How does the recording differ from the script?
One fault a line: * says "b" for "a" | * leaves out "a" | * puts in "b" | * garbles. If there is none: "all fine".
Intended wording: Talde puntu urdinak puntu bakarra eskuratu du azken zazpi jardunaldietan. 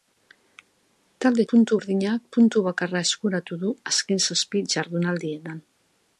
all fine